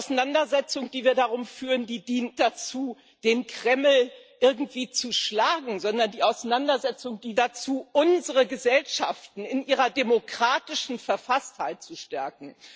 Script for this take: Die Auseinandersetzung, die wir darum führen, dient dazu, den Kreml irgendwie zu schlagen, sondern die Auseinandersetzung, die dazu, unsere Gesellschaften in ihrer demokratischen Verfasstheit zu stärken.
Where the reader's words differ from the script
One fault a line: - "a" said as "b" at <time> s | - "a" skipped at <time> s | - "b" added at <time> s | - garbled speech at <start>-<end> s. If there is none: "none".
none